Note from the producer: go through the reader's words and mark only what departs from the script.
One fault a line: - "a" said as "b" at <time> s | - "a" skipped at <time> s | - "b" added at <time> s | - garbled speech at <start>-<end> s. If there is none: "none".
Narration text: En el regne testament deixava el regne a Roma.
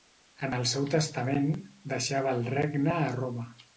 - "regne" said as "seu" at 0.7 s